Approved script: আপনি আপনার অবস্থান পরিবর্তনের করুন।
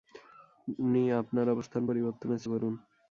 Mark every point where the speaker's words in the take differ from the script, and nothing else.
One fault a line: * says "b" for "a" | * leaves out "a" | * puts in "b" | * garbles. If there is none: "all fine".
all fine